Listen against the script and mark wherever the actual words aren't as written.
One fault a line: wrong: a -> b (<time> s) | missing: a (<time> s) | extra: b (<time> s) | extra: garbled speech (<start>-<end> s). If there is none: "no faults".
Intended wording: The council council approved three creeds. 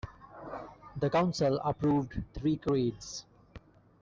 missing: council (1.6 s)